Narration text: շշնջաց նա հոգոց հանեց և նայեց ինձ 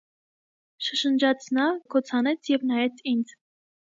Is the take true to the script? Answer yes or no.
yes